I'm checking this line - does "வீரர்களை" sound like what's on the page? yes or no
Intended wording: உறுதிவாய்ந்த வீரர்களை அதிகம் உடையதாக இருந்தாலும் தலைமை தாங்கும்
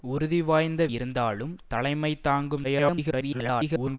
no